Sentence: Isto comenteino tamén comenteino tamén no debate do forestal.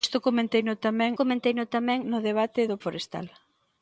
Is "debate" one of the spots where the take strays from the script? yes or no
no